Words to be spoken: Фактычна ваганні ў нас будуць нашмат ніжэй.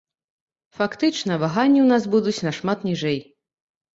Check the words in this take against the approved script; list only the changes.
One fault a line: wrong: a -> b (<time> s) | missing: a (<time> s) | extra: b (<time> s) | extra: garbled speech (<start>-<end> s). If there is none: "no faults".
no faults